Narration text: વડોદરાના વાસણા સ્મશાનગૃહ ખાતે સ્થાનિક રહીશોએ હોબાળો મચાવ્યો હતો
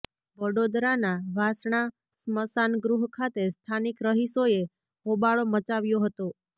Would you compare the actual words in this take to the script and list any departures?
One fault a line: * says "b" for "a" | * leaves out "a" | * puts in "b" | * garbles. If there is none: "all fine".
all fine